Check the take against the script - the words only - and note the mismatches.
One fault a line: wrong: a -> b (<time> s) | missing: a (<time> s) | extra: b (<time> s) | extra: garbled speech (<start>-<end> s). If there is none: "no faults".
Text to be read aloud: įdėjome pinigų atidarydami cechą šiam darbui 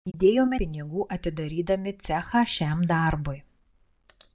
no faults